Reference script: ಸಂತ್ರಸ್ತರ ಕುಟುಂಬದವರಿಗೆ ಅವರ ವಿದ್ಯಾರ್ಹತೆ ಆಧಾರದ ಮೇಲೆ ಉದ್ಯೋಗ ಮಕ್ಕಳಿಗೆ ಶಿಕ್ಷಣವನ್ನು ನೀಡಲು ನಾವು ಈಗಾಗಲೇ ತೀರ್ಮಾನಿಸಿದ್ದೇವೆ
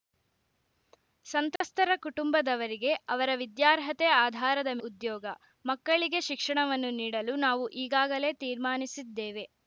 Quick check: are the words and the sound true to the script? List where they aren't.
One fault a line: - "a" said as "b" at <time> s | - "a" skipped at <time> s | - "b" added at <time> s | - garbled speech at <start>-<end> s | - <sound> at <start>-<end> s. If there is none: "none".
- dropout at 1.6-1.6 s
- "ಮೇಲೆ" skipped at 4.7 s